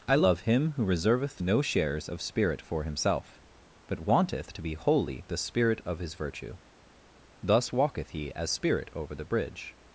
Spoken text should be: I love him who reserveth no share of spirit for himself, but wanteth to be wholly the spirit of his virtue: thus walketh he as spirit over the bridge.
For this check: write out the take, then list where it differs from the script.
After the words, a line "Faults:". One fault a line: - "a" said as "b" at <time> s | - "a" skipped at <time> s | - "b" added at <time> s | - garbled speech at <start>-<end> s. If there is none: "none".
I love him who reserveth no shares of spirit for himself, but wanteth to be wholly the spirit of his virtue: thus walketh he as spirit over the bridge.
Faults:
- "share" said as "shares" at 1.6 s